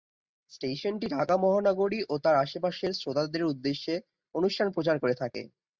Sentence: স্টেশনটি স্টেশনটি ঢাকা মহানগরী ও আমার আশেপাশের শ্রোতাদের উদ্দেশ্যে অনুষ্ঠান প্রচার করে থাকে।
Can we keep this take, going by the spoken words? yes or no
no